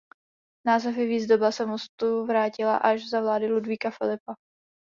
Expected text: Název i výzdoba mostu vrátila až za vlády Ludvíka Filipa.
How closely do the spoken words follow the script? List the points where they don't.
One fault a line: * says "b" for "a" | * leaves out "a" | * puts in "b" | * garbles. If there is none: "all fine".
* puts in "se"